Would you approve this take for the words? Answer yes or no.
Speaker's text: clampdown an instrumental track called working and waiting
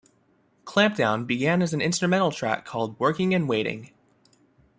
no